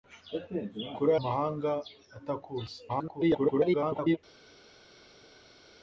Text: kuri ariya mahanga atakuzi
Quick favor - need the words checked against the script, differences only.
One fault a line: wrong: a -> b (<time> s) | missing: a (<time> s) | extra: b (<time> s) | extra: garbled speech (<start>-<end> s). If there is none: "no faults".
missing: ariya (1.1 s)
extra: garbled speech (2.9-4.2 s)